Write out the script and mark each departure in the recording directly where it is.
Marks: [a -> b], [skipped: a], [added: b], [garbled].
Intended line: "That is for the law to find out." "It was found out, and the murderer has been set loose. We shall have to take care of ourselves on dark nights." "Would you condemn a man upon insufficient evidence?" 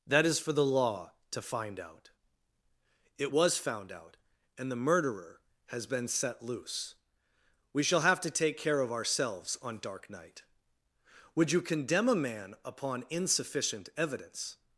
"That is for the law to find out." "It was found out, and the murderer has been set loose. We shall have to take care of ourselves on dark [nights." -> night] "Would you condemn a man upon insufficient evidence?"